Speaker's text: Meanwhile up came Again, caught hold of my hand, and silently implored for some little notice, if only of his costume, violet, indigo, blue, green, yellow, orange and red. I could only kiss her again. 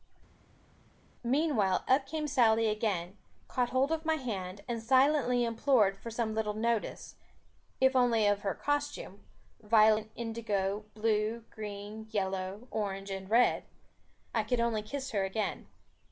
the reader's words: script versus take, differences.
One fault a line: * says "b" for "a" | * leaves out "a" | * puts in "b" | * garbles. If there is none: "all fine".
* puts in "Sally"
* says "her" for "his"